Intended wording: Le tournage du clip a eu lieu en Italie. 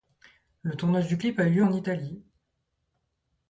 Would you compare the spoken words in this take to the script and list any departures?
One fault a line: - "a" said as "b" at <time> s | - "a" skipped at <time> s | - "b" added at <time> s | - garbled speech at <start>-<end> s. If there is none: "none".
none